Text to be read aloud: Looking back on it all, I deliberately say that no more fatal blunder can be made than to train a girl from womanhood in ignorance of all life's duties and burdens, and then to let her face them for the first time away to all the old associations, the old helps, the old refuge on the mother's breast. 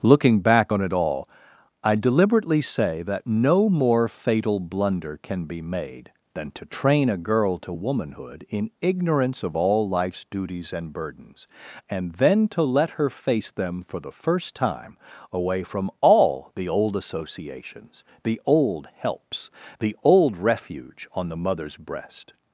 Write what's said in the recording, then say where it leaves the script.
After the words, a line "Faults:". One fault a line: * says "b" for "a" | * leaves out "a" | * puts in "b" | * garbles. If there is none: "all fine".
Looking back on it all, I deliberately say that no more fatal blunder can be made than to train a girl to womanhood in ignorance of all life's duties and burdens, and then to let her face them for the first time away from all the old associations, the old helps, the old refuge on the mother's breast.
Faults:
* says "to" for "from"
* says "from" for "to"